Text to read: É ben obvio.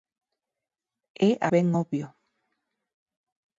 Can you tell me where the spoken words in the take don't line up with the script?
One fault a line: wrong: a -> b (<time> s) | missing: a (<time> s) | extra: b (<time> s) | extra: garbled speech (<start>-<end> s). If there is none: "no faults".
no faults